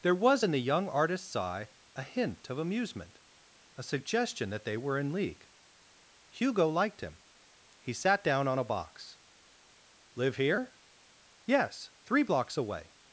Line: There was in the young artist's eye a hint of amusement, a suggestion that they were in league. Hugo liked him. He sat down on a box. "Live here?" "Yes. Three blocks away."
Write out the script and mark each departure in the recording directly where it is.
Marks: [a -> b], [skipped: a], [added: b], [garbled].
There was in the young artist's eye a hint of amusement, a suggestion that they were in league. Hugo liked him. He sat down on a box. "Live here?" "Yes. Three blocks away."